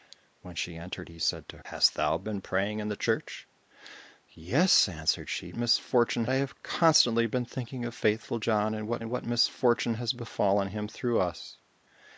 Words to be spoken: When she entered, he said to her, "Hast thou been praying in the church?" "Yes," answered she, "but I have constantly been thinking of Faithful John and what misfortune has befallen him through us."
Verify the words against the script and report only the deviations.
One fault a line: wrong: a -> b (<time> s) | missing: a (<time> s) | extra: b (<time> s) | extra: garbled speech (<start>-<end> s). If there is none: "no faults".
missing: her (1.6 s)
wrong: but -> misfortune (5.6 s)
extra: and what (9.0 s)